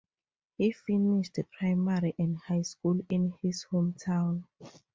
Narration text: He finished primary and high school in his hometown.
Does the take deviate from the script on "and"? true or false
false